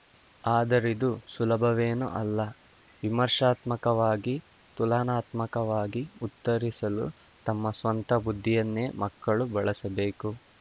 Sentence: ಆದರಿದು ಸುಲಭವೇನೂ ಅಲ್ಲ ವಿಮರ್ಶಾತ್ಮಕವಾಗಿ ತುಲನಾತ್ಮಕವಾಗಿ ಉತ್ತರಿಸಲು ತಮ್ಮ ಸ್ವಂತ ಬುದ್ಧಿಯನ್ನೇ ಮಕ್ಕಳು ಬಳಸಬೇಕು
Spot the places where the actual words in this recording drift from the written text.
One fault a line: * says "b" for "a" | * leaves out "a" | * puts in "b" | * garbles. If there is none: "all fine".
all fine